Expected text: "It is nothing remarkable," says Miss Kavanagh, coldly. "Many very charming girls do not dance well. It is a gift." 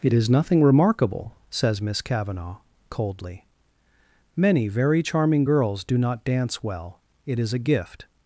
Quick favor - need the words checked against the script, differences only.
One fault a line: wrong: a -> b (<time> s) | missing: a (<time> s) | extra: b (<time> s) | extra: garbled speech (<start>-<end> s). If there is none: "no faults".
no faults